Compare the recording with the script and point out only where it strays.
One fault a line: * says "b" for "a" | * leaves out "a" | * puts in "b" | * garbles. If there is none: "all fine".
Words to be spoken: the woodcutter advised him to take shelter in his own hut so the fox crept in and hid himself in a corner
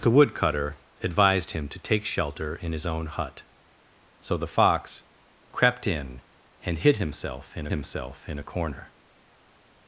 * puts in "himself in"